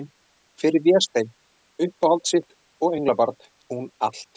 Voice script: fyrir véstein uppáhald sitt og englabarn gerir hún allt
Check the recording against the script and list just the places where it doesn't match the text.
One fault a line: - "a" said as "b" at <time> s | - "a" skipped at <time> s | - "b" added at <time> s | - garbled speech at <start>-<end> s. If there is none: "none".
- "gerir" skipped at 3.4 s